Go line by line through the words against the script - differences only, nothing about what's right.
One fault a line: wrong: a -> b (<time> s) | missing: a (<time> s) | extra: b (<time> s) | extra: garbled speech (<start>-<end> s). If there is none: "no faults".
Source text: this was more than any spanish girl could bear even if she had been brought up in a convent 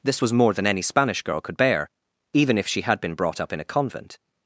no faults